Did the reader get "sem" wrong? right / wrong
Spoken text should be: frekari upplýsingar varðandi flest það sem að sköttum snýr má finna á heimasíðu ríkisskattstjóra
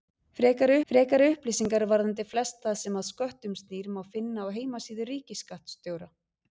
right